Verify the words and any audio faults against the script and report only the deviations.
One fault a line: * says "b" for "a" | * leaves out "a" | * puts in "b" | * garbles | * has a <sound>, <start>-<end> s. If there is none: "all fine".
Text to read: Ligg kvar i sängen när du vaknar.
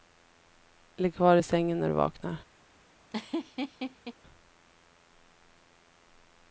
* has a laugh, 3.1-4.1 s